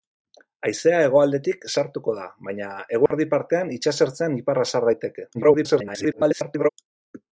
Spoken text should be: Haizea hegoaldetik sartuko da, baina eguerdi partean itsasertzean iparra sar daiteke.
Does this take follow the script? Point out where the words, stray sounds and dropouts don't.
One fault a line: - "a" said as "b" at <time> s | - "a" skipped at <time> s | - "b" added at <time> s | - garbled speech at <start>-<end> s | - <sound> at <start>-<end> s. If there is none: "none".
- dropout at 3.1-3.1 s
- garbled speech at 5.3-6.7 s